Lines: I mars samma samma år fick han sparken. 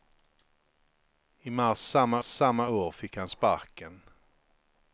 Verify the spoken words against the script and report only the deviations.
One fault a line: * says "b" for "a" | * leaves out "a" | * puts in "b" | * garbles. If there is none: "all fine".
all fine